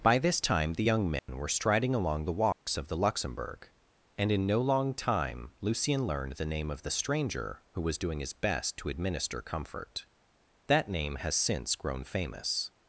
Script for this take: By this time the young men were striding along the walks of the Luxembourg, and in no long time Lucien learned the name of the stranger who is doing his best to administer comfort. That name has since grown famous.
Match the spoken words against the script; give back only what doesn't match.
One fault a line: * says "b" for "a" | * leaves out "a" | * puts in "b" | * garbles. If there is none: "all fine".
* says "was" for "is"